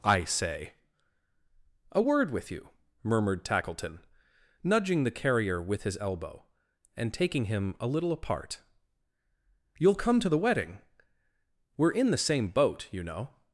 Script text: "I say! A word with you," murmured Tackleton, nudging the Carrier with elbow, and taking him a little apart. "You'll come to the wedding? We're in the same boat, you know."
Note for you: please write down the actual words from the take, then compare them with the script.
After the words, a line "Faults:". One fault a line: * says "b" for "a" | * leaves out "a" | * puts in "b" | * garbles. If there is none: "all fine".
"I say! A word with you," murmured Tackleton, nudging the Carrier with his elbow, and taking him a little apart. "You'll come to the wedding? We're in the same boat, you know."
Faults:
* puts in "his"